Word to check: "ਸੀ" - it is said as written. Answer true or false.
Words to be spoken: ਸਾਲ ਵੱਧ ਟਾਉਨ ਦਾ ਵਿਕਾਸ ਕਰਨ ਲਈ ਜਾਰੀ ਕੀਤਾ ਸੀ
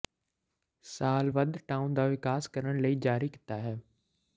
false